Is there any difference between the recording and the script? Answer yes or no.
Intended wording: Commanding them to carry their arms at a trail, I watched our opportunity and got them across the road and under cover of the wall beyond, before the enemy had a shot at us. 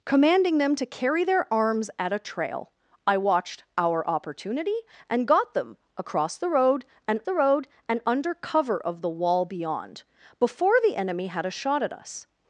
yes